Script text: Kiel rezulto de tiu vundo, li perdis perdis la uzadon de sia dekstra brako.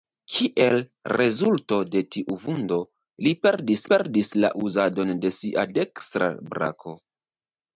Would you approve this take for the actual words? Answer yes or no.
yes